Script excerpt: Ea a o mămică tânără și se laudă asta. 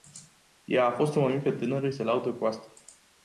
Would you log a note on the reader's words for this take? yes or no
yes